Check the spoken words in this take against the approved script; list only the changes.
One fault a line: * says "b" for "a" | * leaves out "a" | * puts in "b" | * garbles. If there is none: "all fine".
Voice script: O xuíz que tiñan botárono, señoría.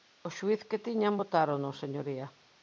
all fine